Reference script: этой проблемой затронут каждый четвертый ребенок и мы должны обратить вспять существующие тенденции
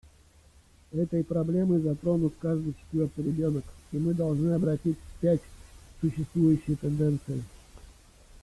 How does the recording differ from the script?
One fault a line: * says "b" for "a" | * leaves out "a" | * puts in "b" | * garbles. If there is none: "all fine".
all fine